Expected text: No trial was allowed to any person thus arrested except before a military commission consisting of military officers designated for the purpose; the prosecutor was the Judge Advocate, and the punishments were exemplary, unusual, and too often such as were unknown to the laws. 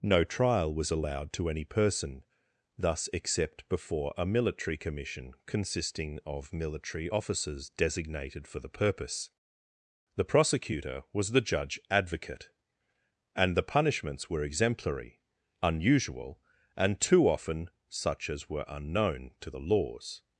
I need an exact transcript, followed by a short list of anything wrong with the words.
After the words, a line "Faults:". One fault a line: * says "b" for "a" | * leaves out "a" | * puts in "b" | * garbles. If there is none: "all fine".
No trial was allowed to any person thus except before a military commission consisting of military officers designated for the purpose; the prosecutor was the Judge Advocate, and the punishments were exemplary, unusual, and too often such as were unknown to the laws.
Faults:
* leaves out "arrested"